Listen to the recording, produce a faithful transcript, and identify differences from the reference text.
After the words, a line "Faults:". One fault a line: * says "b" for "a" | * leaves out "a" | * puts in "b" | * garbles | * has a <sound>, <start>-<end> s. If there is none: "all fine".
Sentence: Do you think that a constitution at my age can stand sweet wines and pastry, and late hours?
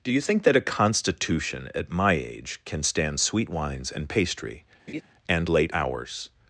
Do you think that a constitution at my age can stand sweet wines and pastry, and late hours?
Faults:
* has a laugh, 4.9-5.0 s